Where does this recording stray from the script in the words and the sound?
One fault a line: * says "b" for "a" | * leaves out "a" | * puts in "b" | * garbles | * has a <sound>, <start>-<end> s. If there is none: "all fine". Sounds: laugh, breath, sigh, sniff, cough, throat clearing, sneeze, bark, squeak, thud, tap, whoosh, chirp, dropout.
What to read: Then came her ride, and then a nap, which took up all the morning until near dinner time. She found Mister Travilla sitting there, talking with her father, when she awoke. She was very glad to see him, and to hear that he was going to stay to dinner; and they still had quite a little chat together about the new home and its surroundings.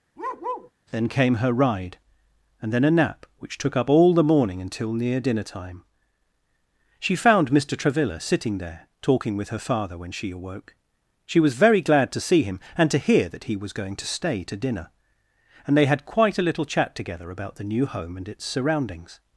* has a bark, 0.2-0.7 s
* leaves out "still"